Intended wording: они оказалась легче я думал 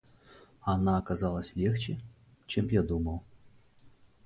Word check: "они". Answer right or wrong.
wrong